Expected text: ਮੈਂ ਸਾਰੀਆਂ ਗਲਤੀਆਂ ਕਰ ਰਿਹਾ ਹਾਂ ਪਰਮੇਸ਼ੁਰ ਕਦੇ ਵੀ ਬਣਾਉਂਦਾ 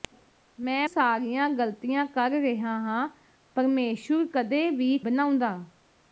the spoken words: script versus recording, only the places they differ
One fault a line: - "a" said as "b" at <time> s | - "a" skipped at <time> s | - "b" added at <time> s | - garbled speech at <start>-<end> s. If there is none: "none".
none